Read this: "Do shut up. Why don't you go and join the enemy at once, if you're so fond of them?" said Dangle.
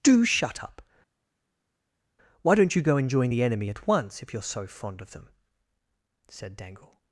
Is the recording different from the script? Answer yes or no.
no